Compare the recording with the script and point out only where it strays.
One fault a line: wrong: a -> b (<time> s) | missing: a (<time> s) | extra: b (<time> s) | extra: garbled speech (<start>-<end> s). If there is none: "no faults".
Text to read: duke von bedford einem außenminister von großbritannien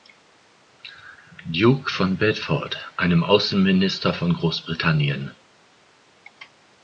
no faults